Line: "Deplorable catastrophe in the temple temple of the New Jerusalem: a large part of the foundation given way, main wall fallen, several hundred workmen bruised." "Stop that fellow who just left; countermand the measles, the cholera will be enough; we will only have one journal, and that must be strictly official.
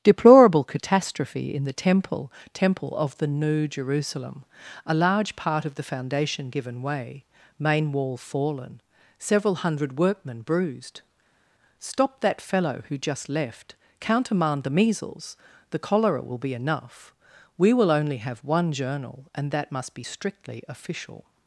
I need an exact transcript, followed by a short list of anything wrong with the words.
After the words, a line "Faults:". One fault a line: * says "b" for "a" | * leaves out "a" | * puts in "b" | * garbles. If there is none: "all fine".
"Deplorable catastrophe in the temple temple of the New Jerusalem: a large part of the foundation given way, main wall fallen, several hundred workmen bruised." "Stop that fellow who just left; countermand the measles, the cholera will be enough; we will only have one journal, and that must be strictly official.
Faults:
all fine